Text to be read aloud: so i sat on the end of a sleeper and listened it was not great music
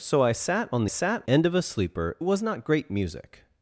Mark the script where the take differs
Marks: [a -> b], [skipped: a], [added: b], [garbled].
so i sat on [the -> sat] end of a sleeper [skipped: and listened it] was not great music